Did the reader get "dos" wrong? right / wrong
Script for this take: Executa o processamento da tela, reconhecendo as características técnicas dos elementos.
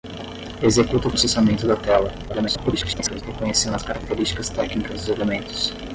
wrong